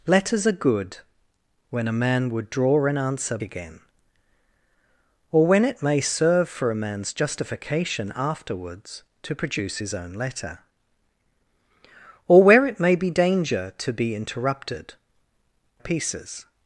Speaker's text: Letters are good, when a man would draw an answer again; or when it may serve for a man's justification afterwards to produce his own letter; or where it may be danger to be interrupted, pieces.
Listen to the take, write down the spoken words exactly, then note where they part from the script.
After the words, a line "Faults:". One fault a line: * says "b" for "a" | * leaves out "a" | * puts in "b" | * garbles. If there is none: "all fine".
Letters are good, when a man would draw an answer again; or when it may serve for a man's justification afterwards to produce his own letter; or where it may be danger to be interrupted, pieces.
Faults:
all fine